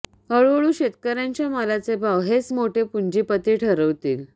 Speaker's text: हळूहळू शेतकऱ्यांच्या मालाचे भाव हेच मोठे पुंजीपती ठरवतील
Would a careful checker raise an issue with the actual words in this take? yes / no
no